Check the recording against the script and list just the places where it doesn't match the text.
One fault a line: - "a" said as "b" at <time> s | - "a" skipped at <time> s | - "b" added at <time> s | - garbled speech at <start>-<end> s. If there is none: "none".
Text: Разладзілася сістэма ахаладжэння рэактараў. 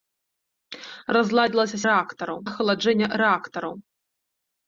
- "сістэма" said as "рэактараў" at 1.9 s